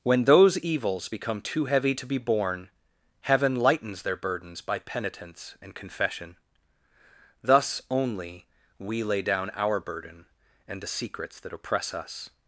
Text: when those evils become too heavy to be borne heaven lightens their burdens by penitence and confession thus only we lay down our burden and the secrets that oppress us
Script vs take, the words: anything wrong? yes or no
no